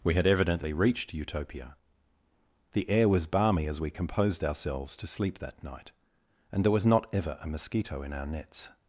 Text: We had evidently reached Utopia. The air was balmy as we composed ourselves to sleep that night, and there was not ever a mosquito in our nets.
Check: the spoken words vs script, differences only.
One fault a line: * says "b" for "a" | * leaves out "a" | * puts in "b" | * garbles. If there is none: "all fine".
all fine